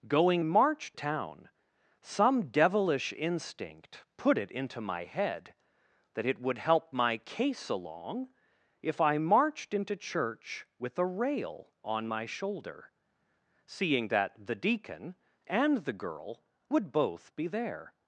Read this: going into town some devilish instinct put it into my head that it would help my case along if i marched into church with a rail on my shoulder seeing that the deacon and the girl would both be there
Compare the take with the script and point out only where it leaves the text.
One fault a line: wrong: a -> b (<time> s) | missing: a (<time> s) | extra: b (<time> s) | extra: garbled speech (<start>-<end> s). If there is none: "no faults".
wrong: into -> marched (0.4 s)